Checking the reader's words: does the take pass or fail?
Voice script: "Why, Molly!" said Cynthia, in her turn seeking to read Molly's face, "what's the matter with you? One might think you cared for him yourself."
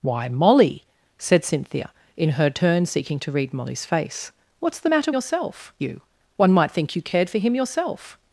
fail